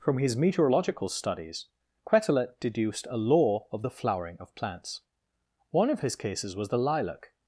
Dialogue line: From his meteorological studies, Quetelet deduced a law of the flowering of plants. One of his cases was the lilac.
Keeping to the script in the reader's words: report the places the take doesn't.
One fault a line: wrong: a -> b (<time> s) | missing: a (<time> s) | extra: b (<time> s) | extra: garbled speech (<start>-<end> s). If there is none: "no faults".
no faults